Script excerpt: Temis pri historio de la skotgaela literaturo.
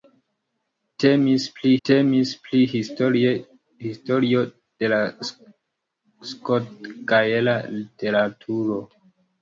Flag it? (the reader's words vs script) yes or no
yes